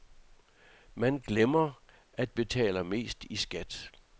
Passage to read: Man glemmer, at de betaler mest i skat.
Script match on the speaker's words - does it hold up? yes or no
no